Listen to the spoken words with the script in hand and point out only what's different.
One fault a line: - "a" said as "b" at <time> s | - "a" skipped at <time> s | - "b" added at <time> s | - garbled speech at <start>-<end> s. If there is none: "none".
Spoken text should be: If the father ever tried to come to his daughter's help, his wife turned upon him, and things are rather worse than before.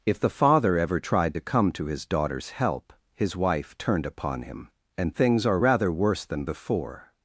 none